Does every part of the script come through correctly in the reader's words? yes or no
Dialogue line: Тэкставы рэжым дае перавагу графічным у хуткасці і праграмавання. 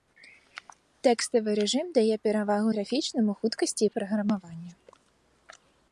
yes